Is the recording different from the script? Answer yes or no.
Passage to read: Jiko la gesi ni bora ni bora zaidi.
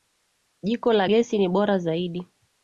yes